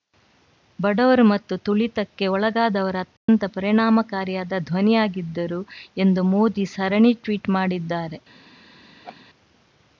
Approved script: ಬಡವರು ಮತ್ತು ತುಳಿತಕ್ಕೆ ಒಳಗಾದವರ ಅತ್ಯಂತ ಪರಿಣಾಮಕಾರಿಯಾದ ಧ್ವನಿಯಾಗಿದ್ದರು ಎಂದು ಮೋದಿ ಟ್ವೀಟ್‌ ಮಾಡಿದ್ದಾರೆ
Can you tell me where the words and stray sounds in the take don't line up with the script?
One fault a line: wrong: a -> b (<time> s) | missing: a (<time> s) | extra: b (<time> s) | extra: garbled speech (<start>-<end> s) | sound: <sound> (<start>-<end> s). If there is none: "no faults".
sound: dropout (3.2-3.3 s)
extra: ಸರಣಿ (6.7 s)
sound: laugh (9.0-9.2 s)